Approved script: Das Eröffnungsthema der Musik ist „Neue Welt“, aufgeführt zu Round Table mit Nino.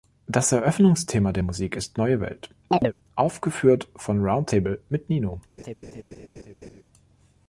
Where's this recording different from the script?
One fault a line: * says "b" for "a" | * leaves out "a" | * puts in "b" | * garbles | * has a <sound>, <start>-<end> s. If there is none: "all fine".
* has a chirp, 2.7-2.9 s
* says "von" for "zu"
* has a laugh, 5.6-6.8 s